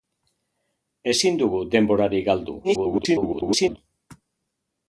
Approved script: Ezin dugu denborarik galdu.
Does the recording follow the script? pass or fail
fail